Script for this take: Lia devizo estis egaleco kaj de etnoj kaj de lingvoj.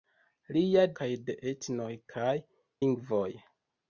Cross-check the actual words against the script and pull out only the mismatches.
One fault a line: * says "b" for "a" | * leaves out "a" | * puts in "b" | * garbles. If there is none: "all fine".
* leaves out "devizo estis egaleco"
* leaves out "de"